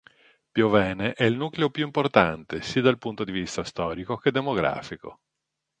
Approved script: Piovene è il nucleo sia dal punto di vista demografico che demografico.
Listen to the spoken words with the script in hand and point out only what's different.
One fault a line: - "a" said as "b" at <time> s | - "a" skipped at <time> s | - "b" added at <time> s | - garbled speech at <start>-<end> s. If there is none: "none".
- "più importante" added at 1.7 s
- "demografico" said as "storico" at 3.6 s